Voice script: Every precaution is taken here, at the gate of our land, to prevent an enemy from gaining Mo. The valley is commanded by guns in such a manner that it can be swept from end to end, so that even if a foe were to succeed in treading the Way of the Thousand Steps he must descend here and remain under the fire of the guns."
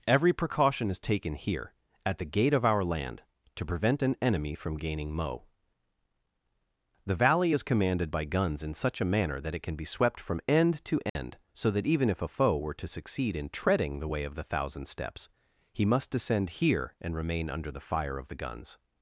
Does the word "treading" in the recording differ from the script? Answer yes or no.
no